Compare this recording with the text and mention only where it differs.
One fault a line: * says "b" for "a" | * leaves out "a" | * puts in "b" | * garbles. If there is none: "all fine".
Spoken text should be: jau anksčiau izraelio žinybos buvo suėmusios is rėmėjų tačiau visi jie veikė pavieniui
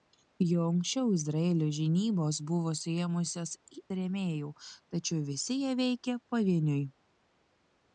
* leaves out "is"